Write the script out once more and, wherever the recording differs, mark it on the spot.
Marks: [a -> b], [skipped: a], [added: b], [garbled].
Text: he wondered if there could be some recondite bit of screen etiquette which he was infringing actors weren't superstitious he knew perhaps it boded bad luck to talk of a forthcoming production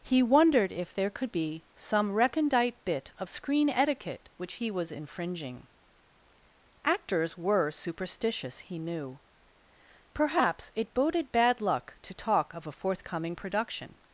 he wondered if there could be some recondite bit of screen etiquette which he was infringing actors [weren't -> were] superstitious he knew perhaps it boded bad luck to talk of a forthcoming production